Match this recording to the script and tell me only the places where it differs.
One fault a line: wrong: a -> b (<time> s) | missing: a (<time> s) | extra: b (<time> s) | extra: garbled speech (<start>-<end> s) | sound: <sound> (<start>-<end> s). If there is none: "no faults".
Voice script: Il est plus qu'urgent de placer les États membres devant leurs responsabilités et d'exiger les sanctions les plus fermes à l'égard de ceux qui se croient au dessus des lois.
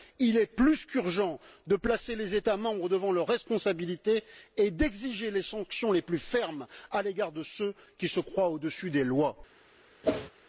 sound: whoosh (10.0-10.3 s)